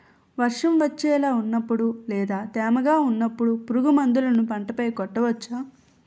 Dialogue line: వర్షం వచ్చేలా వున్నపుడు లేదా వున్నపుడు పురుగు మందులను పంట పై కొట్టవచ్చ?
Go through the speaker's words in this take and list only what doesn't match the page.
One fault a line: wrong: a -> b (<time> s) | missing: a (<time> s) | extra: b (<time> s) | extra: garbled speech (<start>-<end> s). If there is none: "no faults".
extra: తేమగా (2.5 s)